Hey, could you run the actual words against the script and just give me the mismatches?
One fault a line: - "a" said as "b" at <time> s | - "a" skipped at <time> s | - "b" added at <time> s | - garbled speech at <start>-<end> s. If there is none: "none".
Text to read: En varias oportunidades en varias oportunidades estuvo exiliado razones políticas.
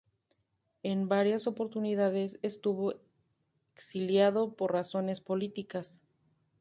- "en varias oportunidades" skipped at 2.4 s
- "por" added at 4.6 s